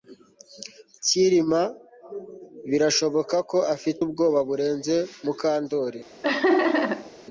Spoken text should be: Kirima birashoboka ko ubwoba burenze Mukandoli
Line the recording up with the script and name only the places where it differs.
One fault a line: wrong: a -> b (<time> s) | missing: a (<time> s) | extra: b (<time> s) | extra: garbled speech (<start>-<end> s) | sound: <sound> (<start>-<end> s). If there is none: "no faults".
extra: afite (3.8 s)
sound: laugh (6.2-7.1 s)